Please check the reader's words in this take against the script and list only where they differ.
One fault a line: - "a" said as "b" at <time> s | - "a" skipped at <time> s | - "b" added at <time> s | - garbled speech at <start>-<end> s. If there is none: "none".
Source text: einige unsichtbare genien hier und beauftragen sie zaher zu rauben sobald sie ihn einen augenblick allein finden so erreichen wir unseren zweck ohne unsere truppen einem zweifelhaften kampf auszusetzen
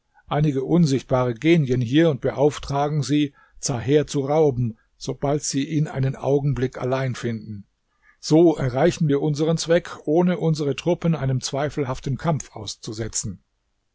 none